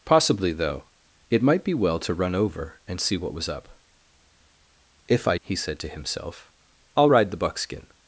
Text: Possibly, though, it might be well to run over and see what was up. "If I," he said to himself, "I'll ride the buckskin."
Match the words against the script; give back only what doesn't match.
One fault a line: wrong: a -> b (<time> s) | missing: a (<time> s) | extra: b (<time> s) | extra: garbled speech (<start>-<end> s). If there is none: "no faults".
no faults